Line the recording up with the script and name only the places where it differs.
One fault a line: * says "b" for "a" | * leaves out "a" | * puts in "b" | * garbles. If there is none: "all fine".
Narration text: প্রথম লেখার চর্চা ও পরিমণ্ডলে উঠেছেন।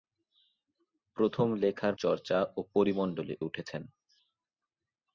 all fine